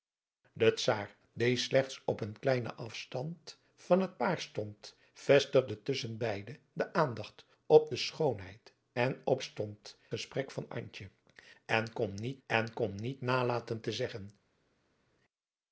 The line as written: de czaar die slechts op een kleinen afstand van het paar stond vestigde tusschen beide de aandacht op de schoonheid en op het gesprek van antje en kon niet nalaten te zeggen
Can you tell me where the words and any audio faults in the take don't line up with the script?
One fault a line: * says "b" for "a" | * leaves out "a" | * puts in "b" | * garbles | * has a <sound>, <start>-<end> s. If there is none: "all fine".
* says "stond" for "het"
* puts in "en kon niet"